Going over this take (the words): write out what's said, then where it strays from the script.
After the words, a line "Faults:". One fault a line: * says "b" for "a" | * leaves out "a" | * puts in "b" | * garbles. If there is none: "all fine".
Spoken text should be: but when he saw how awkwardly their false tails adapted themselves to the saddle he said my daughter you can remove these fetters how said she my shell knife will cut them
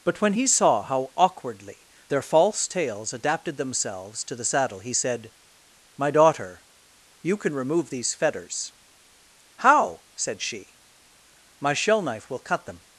but when he saw how awkwardly their false tails adapted themselves to the saddle he said my daughter you can remove these fetters how said she my shell knife will cut them
Faults:
all fine